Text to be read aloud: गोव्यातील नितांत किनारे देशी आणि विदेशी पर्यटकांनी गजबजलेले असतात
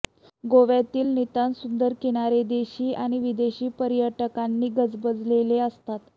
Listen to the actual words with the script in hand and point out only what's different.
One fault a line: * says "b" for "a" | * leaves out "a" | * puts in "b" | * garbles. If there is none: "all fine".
* puts in "सुंदर"